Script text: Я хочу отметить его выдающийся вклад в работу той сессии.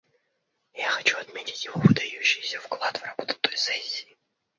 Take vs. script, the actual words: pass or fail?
pass